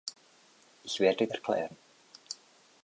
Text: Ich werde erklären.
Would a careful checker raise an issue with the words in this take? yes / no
no